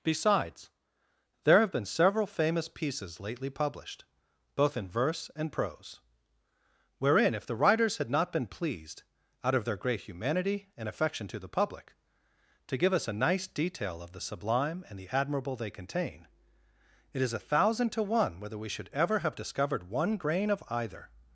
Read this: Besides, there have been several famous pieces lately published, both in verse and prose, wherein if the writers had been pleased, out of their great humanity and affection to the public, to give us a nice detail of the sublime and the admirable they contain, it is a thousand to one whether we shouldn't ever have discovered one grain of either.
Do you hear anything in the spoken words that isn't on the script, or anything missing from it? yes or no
yes